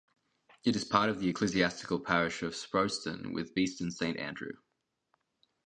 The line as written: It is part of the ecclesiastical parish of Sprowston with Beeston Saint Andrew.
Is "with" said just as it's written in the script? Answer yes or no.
yes